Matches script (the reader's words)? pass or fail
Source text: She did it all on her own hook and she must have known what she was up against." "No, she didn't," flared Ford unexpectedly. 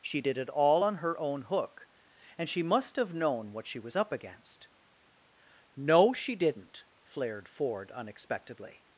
pass